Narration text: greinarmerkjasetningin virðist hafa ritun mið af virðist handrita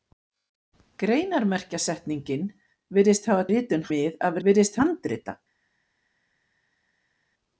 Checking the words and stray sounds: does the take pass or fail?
pass